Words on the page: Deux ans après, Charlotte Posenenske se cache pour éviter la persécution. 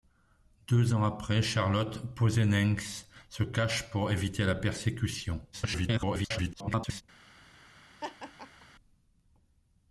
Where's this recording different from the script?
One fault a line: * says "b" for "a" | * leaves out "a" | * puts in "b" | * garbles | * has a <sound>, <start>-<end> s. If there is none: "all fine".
* garbles
* has a laugh, 8.0-8.7 s